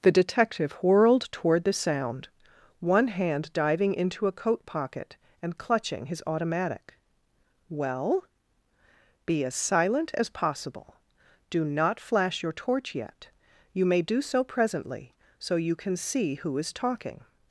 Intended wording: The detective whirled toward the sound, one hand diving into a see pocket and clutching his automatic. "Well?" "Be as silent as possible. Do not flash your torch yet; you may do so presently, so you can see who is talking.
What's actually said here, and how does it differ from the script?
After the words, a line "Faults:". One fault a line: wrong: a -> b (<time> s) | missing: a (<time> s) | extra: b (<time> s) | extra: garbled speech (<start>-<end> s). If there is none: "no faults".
The detective whirled toward the sound, one hand diving into a coat pocket and clutching his automatic. "Well?" "Be as silent as possible. Do not flash your torch yet; you may do so presently, so you can see who is talking.
Faults:
wrong: see -> coat (4.3 s)